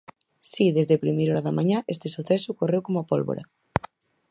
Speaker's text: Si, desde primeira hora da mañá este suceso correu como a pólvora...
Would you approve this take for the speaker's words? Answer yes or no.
yes